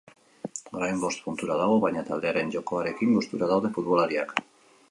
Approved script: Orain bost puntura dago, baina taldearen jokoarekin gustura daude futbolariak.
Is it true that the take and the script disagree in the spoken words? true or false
false